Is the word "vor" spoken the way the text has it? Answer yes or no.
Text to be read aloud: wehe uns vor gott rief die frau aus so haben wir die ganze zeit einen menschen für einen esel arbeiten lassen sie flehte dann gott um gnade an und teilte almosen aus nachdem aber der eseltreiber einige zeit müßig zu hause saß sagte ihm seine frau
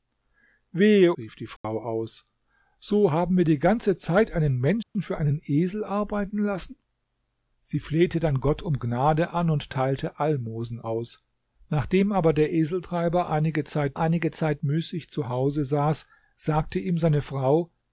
no